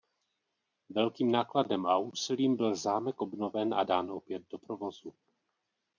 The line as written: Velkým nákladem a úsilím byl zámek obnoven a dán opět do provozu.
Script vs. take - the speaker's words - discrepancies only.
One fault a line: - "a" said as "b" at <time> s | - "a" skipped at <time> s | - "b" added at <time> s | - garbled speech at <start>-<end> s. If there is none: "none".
none